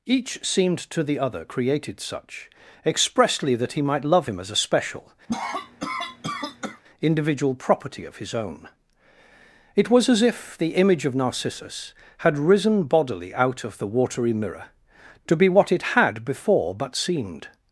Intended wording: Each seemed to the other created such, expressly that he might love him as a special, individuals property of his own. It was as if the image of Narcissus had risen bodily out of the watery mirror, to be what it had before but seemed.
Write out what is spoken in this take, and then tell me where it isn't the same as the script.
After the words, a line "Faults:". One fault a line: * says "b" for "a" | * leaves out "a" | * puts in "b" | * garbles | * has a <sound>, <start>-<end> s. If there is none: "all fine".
Each seemed to the other created such, expressly that he might love him as a special, individual property of his own. It was as if the image of Narcissus had risen bodily out of the watery mirror, to be what it had before but seemed.
Faults:
* has a cough, 5.3-6.8 s
* says "individual" for "individuals"